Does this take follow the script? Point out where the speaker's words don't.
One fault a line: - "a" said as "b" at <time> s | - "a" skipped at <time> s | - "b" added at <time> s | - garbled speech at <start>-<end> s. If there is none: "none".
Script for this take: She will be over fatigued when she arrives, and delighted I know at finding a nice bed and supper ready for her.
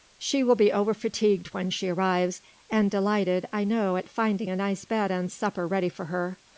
none